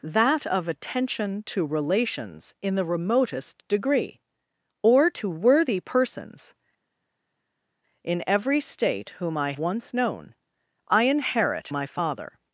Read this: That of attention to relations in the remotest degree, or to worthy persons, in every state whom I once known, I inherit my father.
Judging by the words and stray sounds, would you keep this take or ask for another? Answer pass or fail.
pass